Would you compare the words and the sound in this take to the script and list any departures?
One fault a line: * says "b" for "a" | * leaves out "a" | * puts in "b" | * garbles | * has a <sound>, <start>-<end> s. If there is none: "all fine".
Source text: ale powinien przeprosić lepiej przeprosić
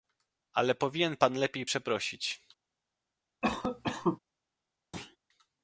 * says "pan" for "przeprosić"
* has a cough, 3.4-4.2 s
* has a thud, 4.9-5.2 s